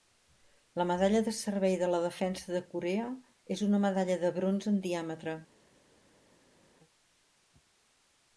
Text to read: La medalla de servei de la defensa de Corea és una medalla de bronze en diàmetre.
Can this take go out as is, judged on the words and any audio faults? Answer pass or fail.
pass